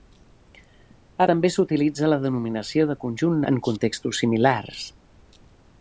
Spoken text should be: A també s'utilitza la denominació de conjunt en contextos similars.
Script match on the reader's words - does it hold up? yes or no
yes